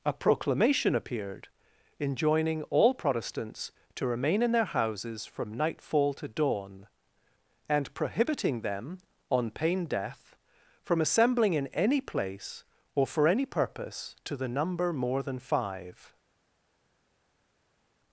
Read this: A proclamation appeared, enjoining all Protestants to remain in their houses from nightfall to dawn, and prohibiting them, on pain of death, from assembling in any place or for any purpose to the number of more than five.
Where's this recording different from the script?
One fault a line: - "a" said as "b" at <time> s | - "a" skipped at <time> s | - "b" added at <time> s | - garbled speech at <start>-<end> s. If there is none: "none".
- "of" skipped at 9.8 s
- "of" skipped at 14.9 s